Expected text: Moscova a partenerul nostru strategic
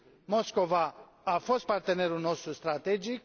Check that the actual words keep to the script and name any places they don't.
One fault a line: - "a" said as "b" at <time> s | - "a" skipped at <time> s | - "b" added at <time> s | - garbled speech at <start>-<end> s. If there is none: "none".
- "fost" added at 1.4 s